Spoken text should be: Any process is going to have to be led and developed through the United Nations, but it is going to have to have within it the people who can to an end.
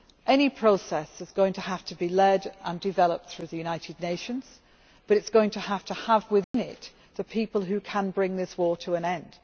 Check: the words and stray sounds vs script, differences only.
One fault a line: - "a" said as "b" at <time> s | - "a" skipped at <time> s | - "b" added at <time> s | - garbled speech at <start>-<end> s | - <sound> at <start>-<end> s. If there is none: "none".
- dropout at 6.4-6.5 s
- "bring this war" added at 8.1 s